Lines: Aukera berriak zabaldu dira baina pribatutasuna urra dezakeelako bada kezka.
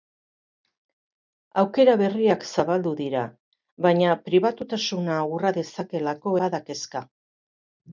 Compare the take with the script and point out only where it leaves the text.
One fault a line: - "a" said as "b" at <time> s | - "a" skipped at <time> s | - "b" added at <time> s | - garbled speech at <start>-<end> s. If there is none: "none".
none